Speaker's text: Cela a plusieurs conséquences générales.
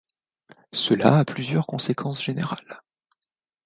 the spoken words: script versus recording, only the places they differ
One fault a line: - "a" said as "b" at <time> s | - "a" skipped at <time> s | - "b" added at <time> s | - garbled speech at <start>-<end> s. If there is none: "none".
none